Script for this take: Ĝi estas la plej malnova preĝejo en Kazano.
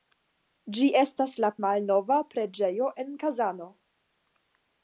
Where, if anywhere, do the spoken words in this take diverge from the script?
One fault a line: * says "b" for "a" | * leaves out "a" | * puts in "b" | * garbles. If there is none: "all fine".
* leaves out "plej"